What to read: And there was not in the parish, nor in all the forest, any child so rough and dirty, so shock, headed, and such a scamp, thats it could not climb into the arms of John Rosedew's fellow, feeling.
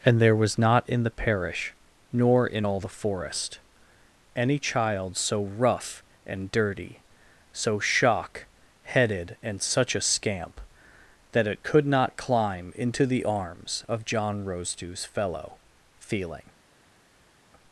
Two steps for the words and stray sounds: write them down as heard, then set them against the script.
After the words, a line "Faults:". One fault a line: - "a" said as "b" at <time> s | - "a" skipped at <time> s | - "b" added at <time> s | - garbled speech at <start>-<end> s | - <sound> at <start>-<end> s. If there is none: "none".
And there was not in the parish, nor in all the forest, any child so rough and dirty, so shock, headed, and such a scamp, that it could not climb into the arms of John Rosedew's fellow, feeling.
Faults:
- "thats" said as "that" at 11.3 s